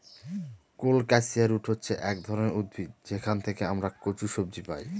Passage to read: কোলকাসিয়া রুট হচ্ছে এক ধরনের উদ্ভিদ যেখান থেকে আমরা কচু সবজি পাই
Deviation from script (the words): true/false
false